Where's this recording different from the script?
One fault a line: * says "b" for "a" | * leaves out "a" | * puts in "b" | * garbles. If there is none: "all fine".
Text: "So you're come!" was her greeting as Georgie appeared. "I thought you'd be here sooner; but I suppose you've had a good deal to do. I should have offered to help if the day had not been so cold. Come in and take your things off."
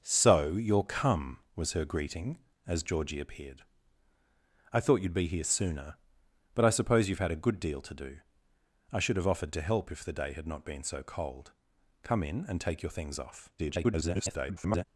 * garbles